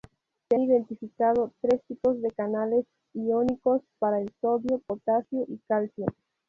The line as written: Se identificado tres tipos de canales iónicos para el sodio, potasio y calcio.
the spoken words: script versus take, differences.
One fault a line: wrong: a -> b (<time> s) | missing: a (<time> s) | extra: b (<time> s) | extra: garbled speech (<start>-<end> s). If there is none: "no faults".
no faults